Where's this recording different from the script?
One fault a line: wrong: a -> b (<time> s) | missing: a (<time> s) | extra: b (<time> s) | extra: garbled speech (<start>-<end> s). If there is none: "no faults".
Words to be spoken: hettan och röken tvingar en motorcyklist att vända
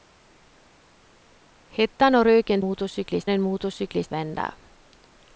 wrong: tvingar -> motorcyklist (2.6 s)
missing: att (4.1 s)